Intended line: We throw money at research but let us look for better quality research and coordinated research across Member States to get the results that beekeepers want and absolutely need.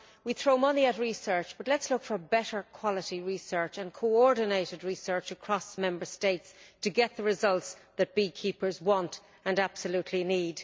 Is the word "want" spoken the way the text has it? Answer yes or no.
yes